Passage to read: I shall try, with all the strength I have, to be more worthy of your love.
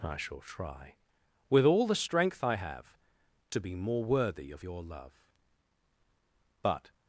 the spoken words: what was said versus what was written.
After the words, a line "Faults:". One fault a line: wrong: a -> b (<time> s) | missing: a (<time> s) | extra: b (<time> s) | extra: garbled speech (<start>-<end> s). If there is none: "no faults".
I shall try, with all the strength I have, to be more worthy of your love. But
Faults:
extra: But (6.6 s)